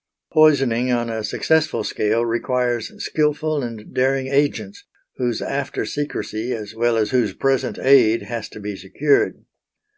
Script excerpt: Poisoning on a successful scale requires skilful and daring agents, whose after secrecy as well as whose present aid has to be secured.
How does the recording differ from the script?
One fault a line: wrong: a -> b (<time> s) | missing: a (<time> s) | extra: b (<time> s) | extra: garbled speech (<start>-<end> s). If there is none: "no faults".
no faults